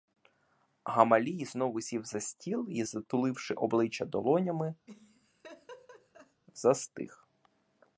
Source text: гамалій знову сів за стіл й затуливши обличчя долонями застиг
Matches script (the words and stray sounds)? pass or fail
fail